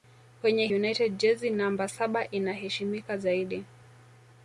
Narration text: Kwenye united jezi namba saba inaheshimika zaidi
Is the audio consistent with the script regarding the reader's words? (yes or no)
yes